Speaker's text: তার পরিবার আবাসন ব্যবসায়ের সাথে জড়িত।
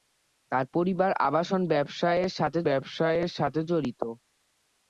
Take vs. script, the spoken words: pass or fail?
fail